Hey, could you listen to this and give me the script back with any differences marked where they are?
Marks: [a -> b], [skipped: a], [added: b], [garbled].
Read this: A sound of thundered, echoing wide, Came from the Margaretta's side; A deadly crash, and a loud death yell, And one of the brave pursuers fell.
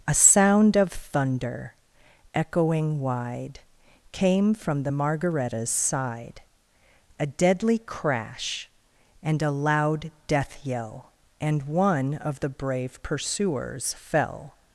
A sound of [thundered, -> thunder] echoing wide, Came from the Margaretta's side; A deadly crash, and a loud death yell, And one of the brave pursuers fell.